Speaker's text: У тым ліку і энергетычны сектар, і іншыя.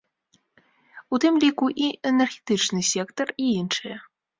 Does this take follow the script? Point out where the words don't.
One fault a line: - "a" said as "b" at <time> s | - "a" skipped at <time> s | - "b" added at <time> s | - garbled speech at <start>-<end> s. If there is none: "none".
none